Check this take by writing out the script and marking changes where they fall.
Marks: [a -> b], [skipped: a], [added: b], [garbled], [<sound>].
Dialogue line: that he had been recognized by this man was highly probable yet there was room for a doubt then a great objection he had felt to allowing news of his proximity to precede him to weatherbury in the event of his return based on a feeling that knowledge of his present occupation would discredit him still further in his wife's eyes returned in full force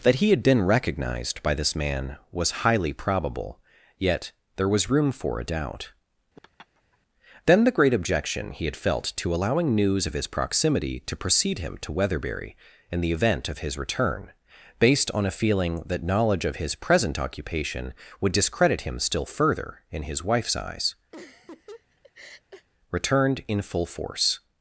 that he had been recognized by this man was highly probable yet there was room for a doubt [laugh] then [a -> the] great objection he had felt to allowing news of his proximity to precede him to weatherbury in the event of his return based on a feeling that knowledge of his present occupation would discredit him still further in his wife's eyes [laugh] returned in full force